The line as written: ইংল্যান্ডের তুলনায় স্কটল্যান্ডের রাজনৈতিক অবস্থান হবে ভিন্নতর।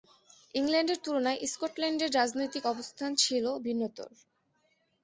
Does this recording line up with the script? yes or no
no